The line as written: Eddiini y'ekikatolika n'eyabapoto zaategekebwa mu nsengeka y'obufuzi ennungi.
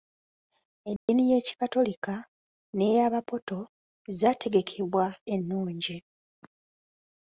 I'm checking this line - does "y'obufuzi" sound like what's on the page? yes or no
no